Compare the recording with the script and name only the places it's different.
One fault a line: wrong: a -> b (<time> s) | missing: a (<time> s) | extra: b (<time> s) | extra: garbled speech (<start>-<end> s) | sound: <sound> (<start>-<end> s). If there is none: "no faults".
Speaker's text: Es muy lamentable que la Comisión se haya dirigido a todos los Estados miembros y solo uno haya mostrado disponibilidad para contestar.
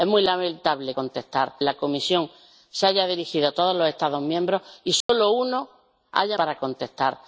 wrong: que -> contestar (0.9 s)
sound: dropout (5.0-5.1 s)
missing: mostrado disponibilidad (6.4 s)